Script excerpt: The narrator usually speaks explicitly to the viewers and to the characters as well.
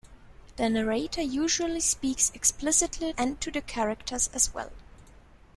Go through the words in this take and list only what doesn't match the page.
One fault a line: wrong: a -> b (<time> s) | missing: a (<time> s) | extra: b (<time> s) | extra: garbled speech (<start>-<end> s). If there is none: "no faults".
missing: to the viewers (3.1 s)